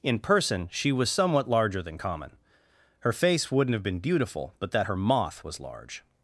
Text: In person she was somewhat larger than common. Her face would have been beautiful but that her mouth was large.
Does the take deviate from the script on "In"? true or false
false